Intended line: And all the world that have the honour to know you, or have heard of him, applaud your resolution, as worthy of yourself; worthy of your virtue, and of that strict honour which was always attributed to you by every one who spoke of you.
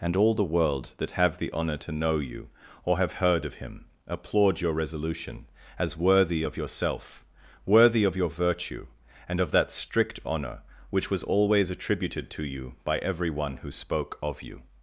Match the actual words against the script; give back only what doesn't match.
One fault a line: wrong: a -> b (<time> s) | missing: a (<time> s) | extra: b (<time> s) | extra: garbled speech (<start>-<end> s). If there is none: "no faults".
no faults